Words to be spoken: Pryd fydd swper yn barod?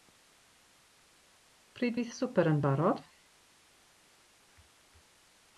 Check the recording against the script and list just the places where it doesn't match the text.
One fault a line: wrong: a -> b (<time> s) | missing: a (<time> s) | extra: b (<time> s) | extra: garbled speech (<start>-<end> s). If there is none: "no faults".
no faults